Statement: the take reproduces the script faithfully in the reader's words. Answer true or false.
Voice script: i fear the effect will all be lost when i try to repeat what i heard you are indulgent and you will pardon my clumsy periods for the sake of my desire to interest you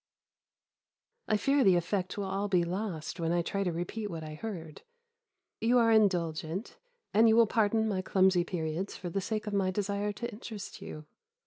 true